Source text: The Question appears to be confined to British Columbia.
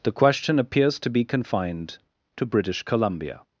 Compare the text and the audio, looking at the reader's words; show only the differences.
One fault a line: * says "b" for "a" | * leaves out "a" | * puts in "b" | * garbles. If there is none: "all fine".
all fine